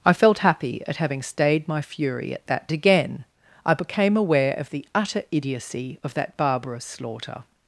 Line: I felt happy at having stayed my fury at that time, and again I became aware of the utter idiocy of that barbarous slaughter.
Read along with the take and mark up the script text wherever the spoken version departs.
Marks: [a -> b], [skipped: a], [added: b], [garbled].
I felt happy at having stayed my fury at that [skipped: time, and] again I became aware of the utter idiocy of that barbarous slaughter.